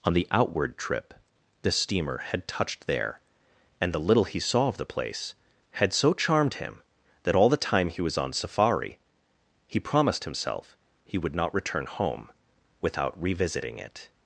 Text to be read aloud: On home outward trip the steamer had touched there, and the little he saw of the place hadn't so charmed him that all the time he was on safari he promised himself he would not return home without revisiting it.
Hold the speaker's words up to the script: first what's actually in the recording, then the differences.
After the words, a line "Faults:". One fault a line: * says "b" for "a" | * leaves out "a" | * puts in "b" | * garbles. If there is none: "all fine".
On the outward trip the steamer had touched there, and the little he saw of the place had so charmed him that all the time he was on safari he promised himself he would not return home without revisiting it.
Faults:
* says "the" for "home"
* says "had" for "hadn't"